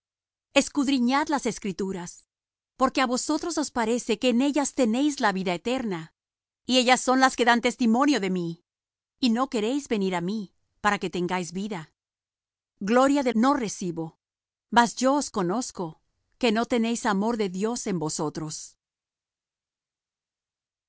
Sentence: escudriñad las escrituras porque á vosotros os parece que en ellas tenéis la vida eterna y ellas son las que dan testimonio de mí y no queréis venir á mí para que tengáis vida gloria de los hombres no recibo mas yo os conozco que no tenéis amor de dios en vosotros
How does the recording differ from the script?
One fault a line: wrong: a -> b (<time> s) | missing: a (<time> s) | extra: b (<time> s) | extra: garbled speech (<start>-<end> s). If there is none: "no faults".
missing: los hombres (13.3 s)